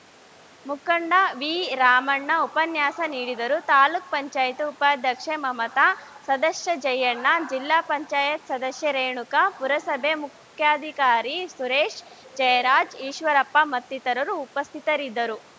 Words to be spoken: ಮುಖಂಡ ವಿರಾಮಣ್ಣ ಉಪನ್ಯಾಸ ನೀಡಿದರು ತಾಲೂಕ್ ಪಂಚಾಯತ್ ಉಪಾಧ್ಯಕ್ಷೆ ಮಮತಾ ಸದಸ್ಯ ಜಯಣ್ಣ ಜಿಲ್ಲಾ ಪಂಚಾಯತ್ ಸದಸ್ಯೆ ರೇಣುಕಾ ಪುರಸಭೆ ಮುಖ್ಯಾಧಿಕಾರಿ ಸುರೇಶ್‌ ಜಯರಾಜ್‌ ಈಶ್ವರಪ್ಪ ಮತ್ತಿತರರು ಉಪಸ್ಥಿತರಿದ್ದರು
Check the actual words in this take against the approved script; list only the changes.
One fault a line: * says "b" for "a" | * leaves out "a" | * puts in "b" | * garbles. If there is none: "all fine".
all fine